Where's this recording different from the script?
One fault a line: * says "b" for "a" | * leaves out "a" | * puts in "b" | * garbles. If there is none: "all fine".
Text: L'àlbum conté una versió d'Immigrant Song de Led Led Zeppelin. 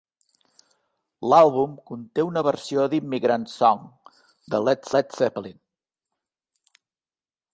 all fine